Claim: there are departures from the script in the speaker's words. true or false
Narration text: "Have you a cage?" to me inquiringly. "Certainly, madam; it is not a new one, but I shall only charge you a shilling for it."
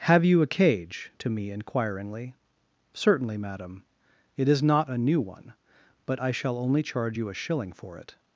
false